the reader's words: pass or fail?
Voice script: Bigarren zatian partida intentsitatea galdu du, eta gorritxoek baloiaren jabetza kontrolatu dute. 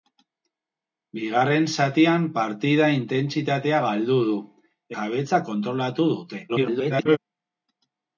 fail